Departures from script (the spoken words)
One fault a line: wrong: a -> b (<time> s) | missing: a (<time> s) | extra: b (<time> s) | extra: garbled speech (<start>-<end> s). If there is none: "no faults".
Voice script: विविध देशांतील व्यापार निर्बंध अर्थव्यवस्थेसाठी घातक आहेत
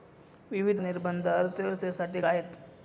missing: देशांतील व्यापार (0.8 s)
missing: घातक (2.2 s)